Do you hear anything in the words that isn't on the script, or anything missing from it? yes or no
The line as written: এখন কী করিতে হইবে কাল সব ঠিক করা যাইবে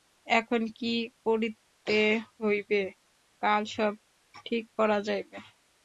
no